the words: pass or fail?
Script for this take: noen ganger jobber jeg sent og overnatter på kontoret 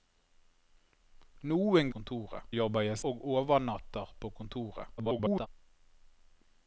fail